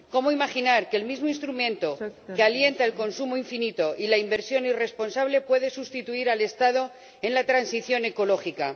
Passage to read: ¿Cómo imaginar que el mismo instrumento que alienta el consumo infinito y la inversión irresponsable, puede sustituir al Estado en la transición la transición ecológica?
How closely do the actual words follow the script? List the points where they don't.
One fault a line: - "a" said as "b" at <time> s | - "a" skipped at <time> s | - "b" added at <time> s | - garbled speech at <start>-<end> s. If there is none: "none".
- "la transición" skipped at 8.1 s